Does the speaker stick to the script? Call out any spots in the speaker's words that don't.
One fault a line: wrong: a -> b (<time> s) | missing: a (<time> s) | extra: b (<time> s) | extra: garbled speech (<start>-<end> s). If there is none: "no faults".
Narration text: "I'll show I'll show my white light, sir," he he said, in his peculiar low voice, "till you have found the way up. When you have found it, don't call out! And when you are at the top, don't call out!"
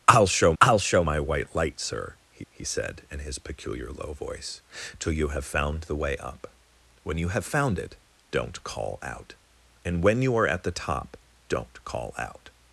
no faults